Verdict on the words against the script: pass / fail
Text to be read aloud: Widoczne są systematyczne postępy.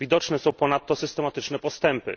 fail